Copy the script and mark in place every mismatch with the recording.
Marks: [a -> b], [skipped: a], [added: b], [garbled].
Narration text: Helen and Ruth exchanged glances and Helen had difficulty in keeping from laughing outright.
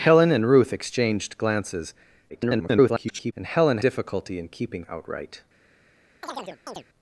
Helen and Ruth exchanged glances [garbled] and Helen [skipped: had] difficulty in keeping [skipped: from laughing] outright.